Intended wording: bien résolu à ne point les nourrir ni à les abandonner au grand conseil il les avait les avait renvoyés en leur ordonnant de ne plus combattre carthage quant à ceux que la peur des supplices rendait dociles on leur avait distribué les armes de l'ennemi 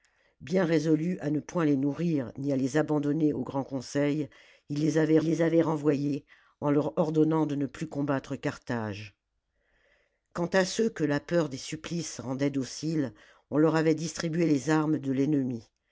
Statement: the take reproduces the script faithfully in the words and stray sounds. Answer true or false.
true